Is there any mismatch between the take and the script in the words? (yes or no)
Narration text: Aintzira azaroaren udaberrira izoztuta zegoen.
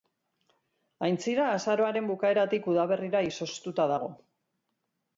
yes